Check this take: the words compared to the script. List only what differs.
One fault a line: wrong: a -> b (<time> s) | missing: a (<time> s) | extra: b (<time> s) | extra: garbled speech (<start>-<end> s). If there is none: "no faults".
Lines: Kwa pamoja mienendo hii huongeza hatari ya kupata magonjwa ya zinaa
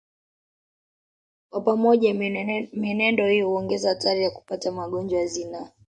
no faults